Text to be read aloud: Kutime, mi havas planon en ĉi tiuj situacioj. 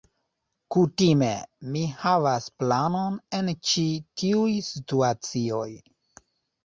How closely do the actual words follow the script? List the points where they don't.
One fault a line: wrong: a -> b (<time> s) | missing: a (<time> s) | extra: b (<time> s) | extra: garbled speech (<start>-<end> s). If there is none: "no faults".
no faults